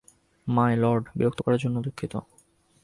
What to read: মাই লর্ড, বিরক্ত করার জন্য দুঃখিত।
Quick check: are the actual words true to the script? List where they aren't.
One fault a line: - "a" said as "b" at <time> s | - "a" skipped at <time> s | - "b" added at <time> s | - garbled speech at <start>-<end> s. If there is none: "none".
none